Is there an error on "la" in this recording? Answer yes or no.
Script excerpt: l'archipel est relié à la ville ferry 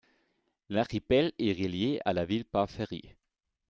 no